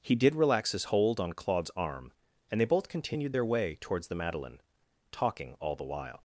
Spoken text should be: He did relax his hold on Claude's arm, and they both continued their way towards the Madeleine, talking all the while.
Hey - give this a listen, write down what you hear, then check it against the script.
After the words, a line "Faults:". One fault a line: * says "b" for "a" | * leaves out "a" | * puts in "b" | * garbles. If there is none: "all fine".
He did relax his hold on Claude's arm, and they both continued their way towards the Madeleine, talking all the while.
Faults:
all fine